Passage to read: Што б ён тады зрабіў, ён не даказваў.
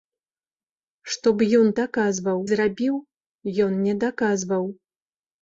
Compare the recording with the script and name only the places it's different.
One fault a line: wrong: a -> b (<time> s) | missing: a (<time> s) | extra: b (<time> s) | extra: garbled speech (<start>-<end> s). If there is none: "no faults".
wrong: тады -> даказваў (1.8 s)